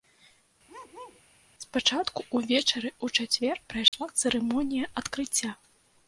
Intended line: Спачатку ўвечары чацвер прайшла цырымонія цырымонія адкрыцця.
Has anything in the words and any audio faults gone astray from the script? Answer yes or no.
yes